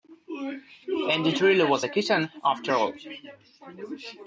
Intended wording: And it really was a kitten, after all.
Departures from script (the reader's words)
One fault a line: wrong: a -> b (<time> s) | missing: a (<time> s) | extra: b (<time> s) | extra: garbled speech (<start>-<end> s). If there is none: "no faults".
no faults